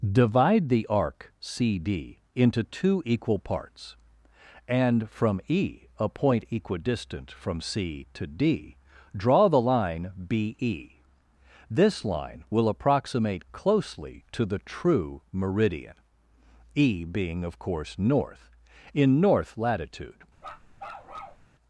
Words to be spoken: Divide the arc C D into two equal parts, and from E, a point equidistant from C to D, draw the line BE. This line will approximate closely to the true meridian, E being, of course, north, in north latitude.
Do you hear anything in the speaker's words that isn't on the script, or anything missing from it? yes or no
no